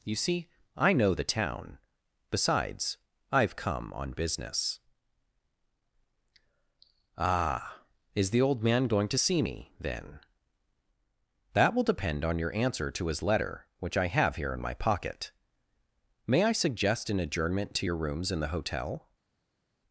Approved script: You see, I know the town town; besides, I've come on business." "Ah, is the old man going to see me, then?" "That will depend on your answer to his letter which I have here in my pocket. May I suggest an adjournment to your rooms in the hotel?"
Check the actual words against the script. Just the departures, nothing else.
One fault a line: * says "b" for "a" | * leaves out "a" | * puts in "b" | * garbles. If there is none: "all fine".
* leaves out "town"